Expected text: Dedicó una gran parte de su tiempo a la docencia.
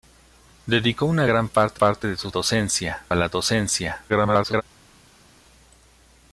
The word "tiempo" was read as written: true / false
false